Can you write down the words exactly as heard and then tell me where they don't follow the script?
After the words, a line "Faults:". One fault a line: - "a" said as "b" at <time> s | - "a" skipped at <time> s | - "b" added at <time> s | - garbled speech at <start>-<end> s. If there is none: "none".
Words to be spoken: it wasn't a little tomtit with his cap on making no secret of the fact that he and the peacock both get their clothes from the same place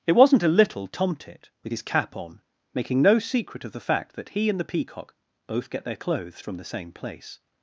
it wasn't a little tomtit with his cap on making no secret of the fact that he and the peacock both get their clothes from the same place
Faults:
none